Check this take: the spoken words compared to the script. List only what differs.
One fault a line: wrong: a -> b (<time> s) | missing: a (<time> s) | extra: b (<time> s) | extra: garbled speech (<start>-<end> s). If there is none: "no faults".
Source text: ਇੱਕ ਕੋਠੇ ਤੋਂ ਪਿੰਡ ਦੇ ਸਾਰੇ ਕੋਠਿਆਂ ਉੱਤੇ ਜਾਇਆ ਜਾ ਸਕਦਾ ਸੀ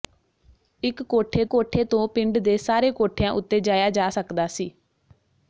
extra: ਕੋਠੇ (1.4 s)